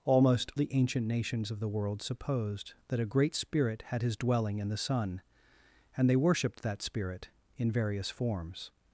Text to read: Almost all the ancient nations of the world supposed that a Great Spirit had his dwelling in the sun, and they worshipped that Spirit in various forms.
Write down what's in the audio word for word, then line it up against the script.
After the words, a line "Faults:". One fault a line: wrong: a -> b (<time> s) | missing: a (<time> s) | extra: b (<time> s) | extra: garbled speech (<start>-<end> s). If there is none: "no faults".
Almost the ancient nations of the world supposed that a Great Spirit had his dwelling in the sun, and they worshipped that Spirit in various forms.
Faults:
missing: all (0.5 s)